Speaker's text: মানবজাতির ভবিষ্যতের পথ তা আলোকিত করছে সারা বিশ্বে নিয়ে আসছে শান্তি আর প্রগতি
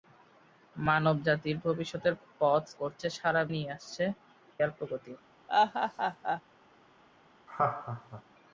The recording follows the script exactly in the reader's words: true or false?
false